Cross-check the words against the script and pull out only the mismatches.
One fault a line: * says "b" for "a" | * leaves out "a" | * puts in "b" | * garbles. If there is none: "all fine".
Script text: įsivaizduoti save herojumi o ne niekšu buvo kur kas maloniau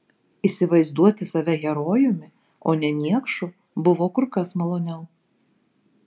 all fine